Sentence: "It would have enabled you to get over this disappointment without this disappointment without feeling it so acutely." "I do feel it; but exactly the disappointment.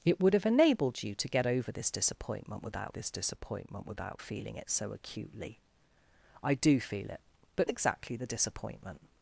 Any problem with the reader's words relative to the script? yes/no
no